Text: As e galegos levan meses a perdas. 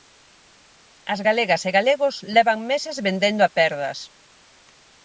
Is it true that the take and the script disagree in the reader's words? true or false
true